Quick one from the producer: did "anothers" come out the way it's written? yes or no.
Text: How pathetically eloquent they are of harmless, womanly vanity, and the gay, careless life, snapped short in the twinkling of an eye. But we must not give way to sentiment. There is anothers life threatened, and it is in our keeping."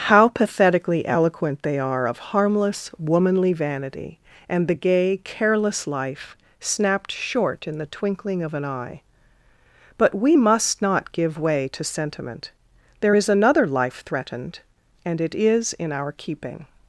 no